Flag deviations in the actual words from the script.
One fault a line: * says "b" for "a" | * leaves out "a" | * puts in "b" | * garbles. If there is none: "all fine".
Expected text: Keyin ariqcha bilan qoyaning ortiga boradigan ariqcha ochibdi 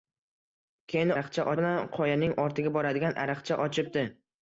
all fine